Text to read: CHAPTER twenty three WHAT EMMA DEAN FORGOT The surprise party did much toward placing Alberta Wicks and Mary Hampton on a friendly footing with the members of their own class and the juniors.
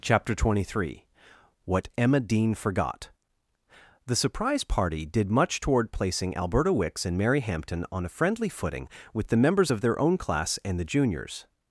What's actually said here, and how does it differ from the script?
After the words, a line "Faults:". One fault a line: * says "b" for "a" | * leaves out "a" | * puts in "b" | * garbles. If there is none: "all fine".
CHAPTER twenty three WHAT EMMA DEAN FORGOT The surprise party did much toward placing Alberta Wicks and Mary Hampton on a friendly footing with the members of their own class and the juniors.
Faults:
all fine